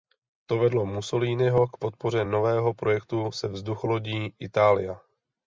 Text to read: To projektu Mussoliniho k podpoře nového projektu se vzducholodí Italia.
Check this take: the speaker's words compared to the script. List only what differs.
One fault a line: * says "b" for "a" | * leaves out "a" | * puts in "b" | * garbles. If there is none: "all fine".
* says "vedlo" for "projektu"